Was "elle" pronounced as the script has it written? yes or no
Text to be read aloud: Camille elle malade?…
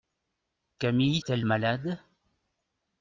yes